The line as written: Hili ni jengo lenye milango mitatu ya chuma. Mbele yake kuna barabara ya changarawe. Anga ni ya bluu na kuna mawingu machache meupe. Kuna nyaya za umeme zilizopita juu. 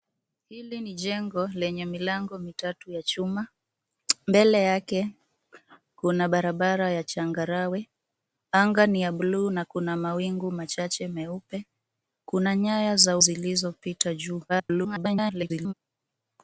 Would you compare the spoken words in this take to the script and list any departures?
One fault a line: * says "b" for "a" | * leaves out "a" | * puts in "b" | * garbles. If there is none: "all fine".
* leaves out "umeme"
* garbles